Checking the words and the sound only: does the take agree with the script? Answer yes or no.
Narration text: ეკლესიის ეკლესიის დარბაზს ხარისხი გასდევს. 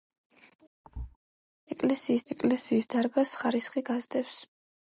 no